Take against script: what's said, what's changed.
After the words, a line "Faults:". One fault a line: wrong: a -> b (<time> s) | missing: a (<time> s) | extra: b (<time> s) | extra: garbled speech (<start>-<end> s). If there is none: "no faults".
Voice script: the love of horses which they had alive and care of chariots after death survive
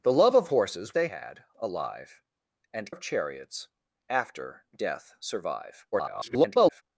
the love of horses they had alive and of chariots after death survive [garbled]
Faults:
missing: which (0.9 s)
missing: care (2.9 s)
extra: garbled speech (5.9-6.8 s)